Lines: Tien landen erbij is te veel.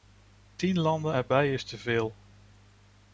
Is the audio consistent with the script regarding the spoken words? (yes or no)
yes